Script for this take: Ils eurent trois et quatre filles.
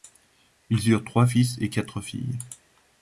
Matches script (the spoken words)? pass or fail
fail